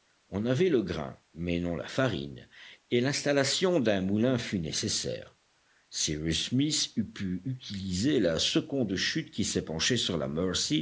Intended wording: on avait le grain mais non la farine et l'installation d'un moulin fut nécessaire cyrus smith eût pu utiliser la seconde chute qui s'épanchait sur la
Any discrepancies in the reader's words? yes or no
no